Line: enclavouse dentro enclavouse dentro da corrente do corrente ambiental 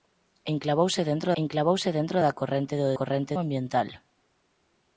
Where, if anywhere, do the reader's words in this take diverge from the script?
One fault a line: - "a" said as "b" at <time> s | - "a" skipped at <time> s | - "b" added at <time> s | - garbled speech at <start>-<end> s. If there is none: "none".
none